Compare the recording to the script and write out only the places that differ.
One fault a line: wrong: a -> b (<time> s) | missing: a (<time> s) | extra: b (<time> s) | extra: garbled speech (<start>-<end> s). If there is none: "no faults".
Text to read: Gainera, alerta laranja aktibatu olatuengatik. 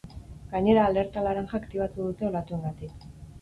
extra: dute (2.1 s)